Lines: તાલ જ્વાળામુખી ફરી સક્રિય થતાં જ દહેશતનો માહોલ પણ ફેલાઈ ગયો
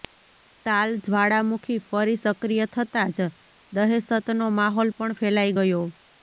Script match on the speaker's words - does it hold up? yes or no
yes